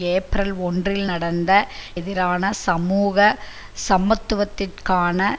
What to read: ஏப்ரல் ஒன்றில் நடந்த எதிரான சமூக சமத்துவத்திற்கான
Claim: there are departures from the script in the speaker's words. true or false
false